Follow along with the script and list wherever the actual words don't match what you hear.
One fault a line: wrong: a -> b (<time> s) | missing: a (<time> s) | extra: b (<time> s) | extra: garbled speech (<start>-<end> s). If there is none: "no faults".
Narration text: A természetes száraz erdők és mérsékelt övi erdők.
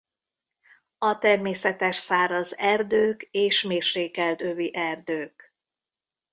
no faults